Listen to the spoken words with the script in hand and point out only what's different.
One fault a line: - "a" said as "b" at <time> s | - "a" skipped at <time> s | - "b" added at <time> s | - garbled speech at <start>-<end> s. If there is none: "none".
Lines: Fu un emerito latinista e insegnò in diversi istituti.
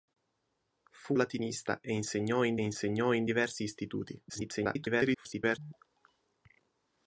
- "un emerito latinista e" said as "latinista e insegnò in" at 1.1 s
- garbled speech at 4.3-5.6 s